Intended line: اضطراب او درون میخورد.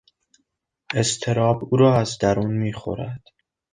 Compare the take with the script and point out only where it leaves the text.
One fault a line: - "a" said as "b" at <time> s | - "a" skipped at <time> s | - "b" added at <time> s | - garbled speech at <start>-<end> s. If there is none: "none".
- "را از" added at 1.8 s